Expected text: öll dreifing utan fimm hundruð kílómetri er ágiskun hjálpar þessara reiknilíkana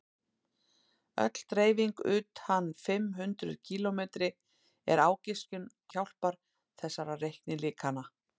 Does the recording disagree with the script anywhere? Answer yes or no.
no